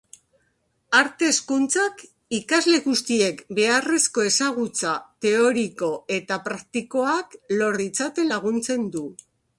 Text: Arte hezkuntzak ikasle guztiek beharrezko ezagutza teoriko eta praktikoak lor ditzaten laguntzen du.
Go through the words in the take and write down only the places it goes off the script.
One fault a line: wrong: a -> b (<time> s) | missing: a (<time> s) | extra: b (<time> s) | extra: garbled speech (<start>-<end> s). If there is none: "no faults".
no faults